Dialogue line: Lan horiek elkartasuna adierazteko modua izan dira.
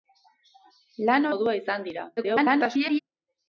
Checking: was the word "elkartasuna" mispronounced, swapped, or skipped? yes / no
yes